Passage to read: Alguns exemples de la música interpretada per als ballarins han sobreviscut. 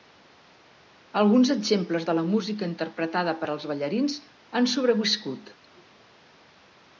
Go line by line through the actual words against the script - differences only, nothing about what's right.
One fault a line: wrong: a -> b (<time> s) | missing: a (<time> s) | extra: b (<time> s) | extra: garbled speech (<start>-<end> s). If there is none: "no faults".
no faults